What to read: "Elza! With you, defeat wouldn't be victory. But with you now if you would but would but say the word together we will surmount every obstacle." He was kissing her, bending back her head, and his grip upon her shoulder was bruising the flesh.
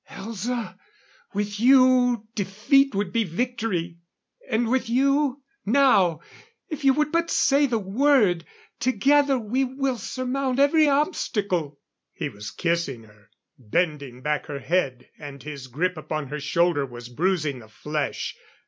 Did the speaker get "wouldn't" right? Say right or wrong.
wrong